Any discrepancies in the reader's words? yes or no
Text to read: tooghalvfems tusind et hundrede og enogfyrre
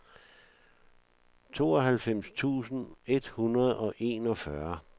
no